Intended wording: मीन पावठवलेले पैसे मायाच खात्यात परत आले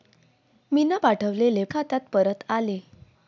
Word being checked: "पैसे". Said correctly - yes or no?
no